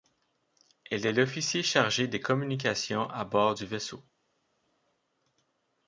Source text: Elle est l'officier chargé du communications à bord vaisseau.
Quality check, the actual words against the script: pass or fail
fail